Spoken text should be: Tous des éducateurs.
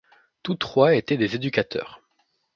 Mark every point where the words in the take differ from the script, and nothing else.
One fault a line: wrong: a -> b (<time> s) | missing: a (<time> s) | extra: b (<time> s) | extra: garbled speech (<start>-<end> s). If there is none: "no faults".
extra: trois étaient (0.6 s)